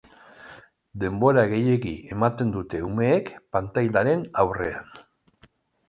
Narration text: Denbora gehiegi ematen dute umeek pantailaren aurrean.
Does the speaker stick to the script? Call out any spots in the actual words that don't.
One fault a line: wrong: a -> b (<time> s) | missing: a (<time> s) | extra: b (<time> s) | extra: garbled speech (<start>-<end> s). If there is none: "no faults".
no faults